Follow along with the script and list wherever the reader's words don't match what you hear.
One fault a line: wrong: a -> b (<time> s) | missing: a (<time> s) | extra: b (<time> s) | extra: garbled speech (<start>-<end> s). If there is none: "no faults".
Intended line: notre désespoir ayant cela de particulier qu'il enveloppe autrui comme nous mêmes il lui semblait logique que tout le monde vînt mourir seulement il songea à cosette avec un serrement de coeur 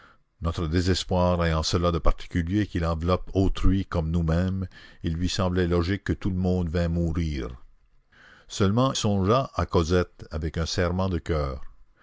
missing: il (8.9 s)